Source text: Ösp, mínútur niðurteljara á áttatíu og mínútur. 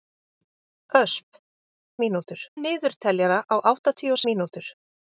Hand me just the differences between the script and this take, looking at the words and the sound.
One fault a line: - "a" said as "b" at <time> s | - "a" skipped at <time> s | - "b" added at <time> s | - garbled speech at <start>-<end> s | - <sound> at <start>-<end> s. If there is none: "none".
none